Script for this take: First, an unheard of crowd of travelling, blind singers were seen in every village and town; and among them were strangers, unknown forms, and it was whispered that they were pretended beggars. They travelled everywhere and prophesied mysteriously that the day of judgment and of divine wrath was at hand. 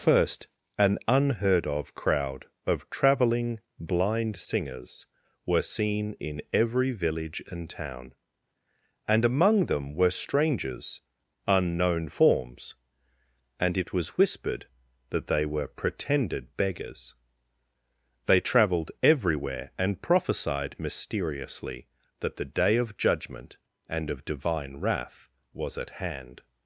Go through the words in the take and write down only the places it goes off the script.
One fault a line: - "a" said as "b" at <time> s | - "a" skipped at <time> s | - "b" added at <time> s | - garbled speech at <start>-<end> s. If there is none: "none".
none